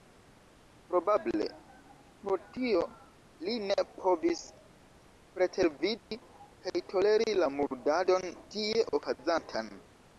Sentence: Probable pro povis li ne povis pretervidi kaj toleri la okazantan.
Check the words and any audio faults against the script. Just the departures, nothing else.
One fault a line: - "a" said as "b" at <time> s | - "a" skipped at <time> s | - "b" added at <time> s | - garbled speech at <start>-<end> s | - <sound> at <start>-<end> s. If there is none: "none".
- "povis" said as "tio" at 2.5 s
- dropout at 6.0-6.1 s
- "murdadon tie" added at 7.6 s